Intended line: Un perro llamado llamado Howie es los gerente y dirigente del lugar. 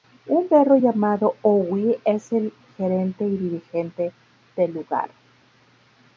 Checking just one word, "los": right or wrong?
wrong